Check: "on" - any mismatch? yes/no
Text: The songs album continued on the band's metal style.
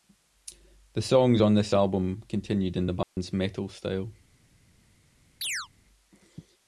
yes